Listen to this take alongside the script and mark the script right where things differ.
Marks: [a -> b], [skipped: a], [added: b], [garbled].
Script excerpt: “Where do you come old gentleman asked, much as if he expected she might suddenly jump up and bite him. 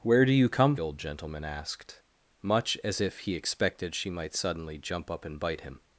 “Where do you come old gentleman asked, much as if he expected she might suddenly jump up and bite him.